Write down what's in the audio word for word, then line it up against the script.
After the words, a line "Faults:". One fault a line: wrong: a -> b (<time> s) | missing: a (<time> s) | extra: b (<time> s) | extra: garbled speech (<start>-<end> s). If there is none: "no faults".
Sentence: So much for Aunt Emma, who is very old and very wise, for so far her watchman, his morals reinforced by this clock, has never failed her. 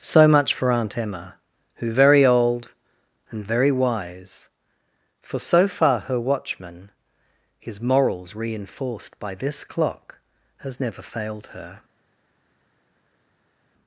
So much for Aunt Emma, who very old and very wise, for so far her watchman, his morals reinforced by this clock, has never failed her.
Faults:
missing: is (1.9 s)